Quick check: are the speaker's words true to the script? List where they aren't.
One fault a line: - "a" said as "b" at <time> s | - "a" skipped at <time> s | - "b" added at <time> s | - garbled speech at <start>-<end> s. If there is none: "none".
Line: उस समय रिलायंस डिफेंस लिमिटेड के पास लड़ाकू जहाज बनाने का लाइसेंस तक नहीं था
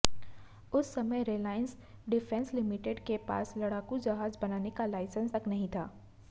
none